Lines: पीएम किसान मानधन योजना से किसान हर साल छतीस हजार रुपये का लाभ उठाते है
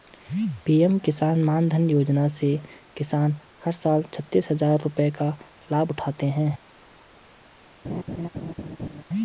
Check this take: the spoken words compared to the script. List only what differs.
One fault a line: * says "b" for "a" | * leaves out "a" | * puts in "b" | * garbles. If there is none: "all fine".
all fine